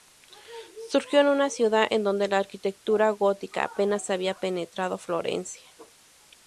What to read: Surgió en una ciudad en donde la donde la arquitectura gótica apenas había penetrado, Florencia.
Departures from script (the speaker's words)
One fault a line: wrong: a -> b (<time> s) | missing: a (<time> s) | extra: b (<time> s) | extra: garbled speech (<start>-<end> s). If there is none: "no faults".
missing: donde la (2.4 s)